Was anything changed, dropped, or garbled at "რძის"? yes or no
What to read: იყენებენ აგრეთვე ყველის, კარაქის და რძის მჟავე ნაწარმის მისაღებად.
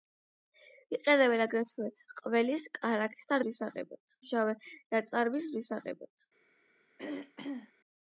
yes